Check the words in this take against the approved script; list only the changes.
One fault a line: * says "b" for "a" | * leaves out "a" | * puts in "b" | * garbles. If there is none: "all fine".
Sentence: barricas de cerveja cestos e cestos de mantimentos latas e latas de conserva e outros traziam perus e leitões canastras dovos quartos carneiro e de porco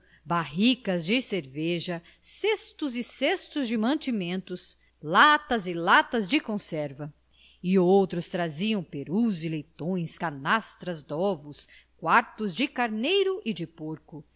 * puts in "de"